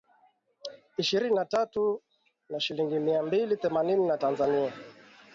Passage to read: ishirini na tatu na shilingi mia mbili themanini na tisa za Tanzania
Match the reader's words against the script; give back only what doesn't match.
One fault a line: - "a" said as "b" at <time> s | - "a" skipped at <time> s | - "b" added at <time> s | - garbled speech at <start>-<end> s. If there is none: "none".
- "tisa za" skipped at 4.2 s